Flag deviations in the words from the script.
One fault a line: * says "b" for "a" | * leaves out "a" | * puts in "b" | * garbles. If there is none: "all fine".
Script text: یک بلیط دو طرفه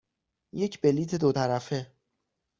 all fine